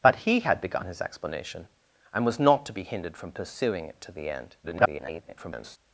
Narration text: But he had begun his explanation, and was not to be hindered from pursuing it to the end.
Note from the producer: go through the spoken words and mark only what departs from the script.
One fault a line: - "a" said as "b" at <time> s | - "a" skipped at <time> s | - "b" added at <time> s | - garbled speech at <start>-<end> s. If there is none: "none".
- garbled speech at 4.6-5.8 s